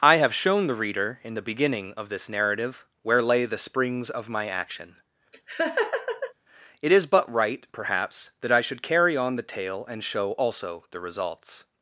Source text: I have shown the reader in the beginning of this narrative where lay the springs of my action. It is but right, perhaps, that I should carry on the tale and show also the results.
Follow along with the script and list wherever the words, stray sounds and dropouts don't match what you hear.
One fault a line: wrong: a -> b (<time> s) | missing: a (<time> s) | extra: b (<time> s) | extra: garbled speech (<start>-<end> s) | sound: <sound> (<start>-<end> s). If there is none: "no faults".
sound: laugh (5.3-6.3 s)